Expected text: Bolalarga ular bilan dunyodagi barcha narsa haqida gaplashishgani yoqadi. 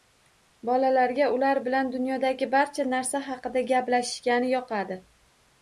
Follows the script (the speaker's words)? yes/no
yes